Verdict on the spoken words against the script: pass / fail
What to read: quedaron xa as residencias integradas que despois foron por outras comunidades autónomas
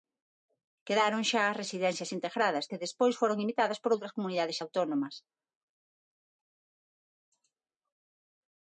fail